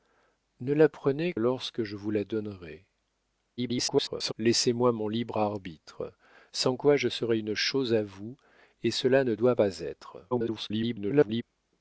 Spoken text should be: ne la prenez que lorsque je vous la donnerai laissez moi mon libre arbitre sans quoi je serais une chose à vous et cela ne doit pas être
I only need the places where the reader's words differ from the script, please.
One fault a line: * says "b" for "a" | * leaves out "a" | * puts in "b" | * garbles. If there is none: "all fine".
* leaves out "que"
* garbles
* garbles